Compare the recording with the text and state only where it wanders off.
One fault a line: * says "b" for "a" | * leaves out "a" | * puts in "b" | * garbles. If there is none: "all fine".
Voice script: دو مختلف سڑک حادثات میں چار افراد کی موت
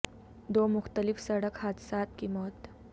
* leaves out "میں چار افراد"